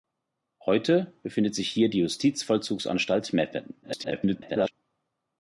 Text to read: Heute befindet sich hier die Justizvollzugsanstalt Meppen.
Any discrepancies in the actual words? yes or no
yes